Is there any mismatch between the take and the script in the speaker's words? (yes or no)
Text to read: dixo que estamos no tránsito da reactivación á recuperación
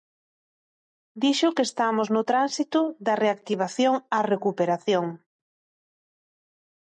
no